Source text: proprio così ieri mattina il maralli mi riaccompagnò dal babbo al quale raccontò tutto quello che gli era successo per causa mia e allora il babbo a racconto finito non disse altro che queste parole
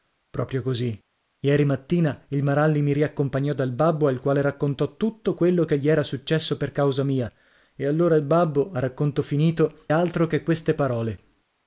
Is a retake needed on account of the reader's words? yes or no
yes